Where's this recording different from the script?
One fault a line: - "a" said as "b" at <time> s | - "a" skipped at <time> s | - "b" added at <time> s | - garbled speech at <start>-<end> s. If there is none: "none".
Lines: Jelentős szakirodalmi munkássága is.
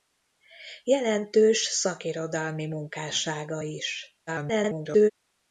- garbled speech at 4.3-5.1 s